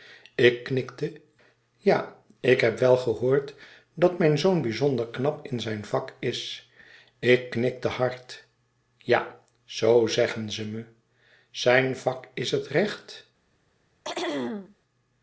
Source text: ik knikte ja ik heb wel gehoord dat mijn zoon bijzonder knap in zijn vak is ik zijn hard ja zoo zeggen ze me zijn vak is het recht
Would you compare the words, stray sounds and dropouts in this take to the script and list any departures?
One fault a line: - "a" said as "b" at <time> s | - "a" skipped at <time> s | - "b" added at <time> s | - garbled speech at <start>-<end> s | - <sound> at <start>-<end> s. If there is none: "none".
- "zijn" said as "knikte" at 7.5 s
- throat clearing at 14.0-14.8 s